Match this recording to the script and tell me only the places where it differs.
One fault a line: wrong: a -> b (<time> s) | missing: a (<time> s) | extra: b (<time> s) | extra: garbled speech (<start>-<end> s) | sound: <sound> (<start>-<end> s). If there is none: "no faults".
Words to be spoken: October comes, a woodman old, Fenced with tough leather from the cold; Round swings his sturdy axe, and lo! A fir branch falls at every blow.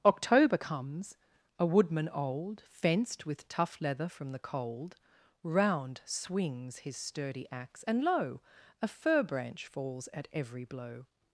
no faults